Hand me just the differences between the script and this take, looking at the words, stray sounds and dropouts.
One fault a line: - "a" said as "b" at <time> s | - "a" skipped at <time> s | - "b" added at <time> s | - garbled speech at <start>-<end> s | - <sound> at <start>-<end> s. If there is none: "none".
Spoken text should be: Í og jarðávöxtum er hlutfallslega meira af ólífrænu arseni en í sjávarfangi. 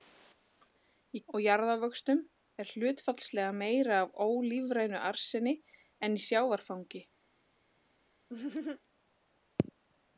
- laugh at 8.3-8.8 s